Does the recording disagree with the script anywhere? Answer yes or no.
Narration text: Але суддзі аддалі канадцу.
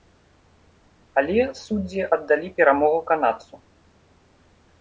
yes